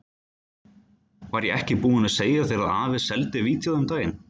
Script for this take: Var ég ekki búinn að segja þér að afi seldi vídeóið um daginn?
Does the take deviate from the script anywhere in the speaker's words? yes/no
no